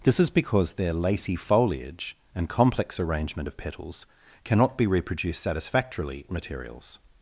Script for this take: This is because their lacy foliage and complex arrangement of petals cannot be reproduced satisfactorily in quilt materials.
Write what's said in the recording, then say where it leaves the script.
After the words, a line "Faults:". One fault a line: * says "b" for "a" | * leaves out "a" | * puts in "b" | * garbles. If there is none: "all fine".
This is because their lacy foliage and complex arrangement of petals cannot be reproduced satisfactorily materials.
Faults:
* leaves out "in quilt"